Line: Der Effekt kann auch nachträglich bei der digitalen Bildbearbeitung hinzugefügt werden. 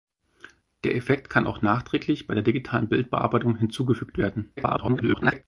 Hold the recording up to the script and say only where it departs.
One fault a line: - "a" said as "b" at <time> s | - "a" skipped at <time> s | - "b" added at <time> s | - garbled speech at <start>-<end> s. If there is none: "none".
- garbled speech at 4.6-5.4 s